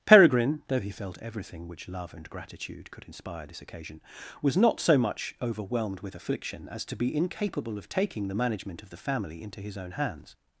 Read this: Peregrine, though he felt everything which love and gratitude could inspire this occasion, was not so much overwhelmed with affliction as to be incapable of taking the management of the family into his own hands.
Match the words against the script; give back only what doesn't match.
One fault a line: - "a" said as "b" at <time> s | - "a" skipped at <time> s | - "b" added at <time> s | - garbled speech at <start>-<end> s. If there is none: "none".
none